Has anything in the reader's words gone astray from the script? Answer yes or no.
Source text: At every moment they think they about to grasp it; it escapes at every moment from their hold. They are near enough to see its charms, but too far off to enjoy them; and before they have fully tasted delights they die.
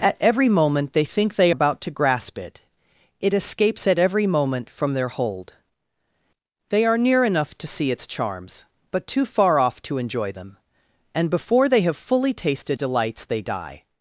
no